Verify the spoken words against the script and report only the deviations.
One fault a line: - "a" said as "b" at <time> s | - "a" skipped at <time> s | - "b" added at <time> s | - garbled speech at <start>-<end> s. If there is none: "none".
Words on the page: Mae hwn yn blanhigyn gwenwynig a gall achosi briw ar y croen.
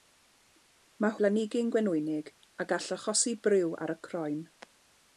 - "hwn yn" skipped at 1.1 s